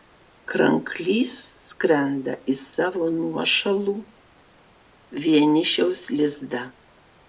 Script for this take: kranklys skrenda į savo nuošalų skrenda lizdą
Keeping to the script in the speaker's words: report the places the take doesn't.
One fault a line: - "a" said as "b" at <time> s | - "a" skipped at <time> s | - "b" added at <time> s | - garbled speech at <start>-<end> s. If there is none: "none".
- "skrenda" said as "vienišiaus" at 5.3 s